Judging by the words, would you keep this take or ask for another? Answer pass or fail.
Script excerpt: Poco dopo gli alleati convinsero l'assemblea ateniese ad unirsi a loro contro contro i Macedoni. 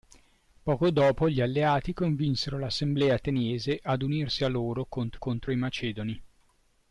pass